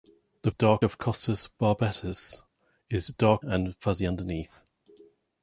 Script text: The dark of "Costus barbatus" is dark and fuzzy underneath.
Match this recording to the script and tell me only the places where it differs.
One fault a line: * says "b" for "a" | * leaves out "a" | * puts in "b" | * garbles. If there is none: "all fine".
all fine